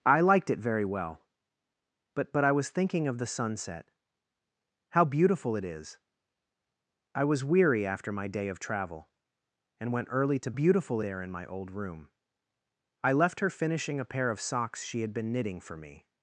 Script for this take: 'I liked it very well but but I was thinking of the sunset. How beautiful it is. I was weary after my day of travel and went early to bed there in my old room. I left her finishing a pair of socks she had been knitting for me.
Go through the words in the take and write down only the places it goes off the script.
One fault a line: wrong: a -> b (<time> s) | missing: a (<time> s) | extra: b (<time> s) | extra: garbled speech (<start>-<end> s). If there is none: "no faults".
wrong: bed -> beautiful (10.5 s)